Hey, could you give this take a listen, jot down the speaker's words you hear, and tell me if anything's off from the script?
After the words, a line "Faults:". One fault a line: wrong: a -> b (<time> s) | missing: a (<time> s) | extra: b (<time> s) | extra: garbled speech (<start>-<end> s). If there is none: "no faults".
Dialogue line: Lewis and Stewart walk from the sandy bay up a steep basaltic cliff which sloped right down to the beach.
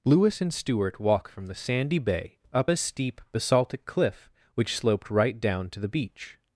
Lewis and Stewart walk from the sandy bay up a steep basaltic cliff which sloped right down to the beach.
Faults:
no faults